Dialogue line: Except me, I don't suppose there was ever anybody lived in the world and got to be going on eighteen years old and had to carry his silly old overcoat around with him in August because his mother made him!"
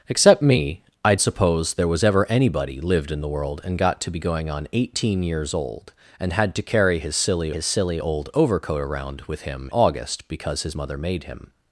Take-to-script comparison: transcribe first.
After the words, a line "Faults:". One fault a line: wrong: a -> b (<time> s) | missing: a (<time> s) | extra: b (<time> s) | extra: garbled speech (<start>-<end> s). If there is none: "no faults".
Except me, I suppose there was ever anybody lived in the world and got to be going on eighteen years old and had to carry his silly his silly old overcoat around with him August because his mother made him!"
Faults:
missing: don't (1.1 s)
extra: his silly (7.5 s)
missing: in (9.7 s)